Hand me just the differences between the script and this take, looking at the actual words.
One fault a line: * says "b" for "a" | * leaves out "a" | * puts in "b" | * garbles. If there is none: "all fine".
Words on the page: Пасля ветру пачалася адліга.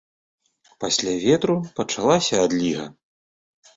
all fine